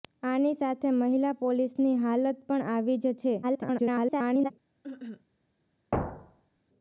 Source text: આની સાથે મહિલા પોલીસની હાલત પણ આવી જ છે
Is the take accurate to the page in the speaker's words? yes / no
no